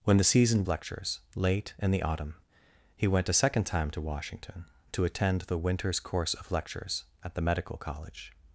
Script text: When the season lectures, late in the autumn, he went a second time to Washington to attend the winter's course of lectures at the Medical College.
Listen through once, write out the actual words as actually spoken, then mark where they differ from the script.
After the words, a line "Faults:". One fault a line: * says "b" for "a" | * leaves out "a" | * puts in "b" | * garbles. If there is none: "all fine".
When the season lectures, late in the autumn, he went a second time to Washington to attend the winter's course of lectures at the Medical College.
Faults:
all fine